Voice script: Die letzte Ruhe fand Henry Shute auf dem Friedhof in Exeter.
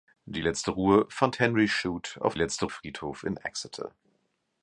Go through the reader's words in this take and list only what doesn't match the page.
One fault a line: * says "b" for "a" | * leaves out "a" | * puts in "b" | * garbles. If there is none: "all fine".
* says "letzte" for "dem"